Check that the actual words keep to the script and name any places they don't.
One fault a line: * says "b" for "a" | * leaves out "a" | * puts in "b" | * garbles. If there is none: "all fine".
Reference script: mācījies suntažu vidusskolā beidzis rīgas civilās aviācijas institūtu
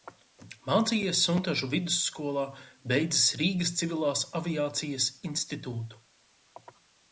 all fine